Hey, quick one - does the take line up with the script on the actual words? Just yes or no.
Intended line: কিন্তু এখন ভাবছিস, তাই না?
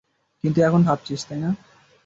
yes